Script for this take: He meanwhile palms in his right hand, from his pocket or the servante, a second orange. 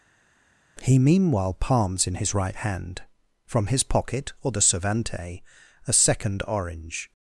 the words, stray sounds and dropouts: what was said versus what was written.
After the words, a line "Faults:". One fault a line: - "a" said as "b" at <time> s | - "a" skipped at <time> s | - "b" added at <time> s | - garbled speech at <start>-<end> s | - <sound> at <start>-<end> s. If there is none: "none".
He meanwhile palms in his right hand, from his pocket or the servante, a second orange.
Faults:
none